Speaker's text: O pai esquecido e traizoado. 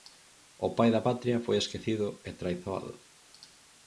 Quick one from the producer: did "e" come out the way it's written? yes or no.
yes